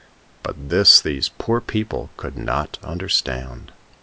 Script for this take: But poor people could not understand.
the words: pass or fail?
fail